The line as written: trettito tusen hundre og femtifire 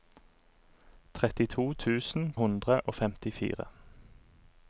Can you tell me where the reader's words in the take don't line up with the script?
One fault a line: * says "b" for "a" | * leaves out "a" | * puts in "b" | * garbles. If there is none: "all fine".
all fine